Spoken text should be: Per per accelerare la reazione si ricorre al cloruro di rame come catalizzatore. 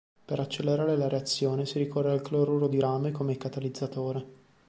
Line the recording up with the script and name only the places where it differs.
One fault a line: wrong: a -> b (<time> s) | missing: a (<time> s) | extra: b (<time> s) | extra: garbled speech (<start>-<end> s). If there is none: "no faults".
missing: per (0.4 s)